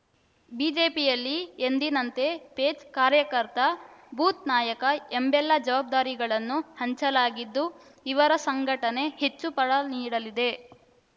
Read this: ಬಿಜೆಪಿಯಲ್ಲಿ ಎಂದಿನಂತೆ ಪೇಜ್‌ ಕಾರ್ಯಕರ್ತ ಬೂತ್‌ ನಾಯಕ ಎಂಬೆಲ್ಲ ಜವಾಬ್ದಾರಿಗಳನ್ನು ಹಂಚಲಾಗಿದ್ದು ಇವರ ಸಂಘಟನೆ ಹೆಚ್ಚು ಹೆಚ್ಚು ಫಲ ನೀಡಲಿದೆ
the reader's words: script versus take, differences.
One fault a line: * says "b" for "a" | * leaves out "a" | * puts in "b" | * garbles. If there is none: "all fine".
* leaves out "ಹೆಚ್ಚು"